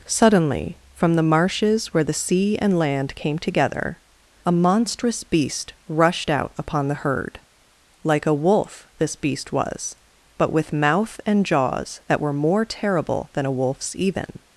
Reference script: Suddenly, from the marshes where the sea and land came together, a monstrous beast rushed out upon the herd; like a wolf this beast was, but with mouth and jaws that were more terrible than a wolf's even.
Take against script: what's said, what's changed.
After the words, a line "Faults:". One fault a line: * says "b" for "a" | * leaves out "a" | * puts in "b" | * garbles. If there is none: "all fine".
Suddenly, from the marshes where the sea and land came together, a monstrous beast rushed out upon the herd; like a wolf this beast was, but with mouth and jaws that were more terrible than a wolf's even.
Faults:
all fine